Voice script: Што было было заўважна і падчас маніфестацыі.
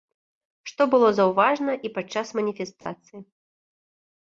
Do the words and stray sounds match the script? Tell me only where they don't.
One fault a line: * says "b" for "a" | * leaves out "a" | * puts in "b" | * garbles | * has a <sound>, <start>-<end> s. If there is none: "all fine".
* leaves out "было"
* has a dropout, 2.8-2.9 s